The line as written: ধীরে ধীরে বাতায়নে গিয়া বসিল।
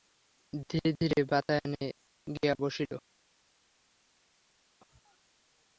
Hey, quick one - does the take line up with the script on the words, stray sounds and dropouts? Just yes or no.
yes